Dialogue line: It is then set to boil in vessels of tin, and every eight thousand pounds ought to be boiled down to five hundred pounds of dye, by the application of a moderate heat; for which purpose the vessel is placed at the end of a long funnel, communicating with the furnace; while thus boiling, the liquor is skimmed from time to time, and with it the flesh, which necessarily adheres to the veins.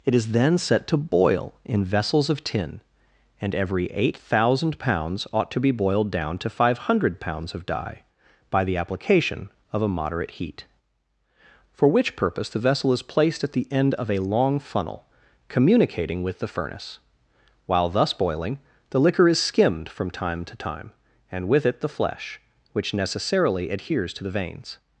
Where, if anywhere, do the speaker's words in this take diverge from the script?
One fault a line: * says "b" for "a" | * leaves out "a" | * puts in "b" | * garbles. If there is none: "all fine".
all fine